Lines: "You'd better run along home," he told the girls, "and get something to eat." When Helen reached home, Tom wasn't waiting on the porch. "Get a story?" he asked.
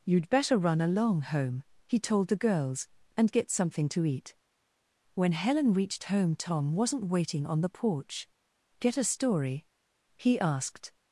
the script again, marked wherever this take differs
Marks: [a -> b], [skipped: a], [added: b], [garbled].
"You'd better run along home," he told the girls, "and get something to eat." When Helen reached home, Tom wasn't waiting on the porch. "Get a story?" he asked.